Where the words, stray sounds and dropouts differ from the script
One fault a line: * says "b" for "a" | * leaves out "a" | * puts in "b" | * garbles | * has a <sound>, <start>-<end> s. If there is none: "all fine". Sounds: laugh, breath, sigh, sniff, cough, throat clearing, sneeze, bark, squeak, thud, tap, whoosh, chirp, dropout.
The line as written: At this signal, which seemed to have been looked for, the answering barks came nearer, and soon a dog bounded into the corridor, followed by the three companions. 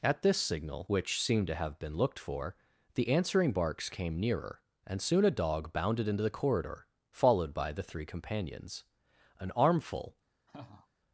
* puts in "An armful"
* has a laugh, 10.5-10.9 s